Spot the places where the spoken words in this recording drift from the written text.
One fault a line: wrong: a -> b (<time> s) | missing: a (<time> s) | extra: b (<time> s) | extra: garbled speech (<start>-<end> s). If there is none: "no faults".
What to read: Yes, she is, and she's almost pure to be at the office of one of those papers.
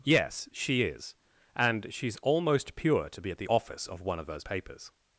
no faults